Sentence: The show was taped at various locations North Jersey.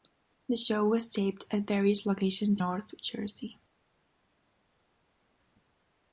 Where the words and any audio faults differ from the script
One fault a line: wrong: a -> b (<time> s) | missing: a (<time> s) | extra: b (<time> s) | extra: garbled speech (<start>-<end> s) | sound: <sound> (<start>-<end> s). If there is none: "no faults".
no faults